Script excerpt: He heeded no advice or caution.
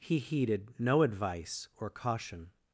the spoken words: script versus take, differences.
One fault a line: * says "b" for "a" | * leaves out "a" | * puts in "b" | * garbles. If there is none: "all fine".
all fine